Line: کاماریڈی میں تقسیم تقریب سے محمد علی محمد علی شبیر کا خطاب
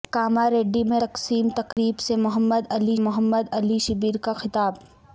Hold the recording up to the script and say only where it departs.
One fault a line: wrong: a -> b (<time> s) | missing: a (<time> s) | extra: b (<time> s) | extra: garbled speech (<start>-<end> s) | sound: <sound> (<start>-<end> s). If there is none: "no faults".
sound: dropout (1.7-1.8 s)